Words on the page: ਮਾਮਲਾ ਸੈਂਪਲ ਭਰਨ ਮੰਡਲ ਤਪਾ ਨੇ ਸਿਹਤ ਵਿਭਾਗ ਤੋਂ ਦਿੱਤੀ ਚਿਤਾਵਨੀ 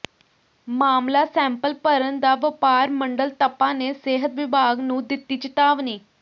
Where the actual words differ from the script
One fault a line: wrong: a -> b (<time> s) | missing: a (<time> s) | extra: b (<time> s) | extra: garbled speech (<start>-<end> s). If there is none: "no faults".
extra: ਦਾ ਵਪਾਰ (2.2 s)
wrong: ਤੋਂ -> ਨੂੰ (4.8 s)